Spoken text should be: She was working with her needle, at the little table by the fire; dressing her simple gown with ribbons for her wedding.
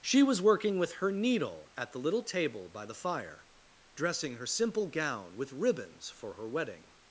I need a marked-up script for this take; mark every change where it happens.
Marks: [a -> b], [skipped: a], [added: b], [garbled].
She was working with her needle, at the little table by the fire; dressing her simple gown with ribbons for her wedding.